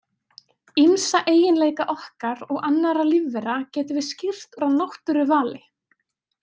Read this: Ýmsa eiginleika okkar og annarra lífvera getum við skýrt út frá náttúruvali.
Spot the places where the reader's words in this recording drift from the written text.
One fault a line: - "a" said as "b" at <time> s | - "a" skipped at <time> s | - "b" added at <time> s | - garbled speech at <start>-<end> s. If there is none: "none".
- "út" skipped at 4.6 s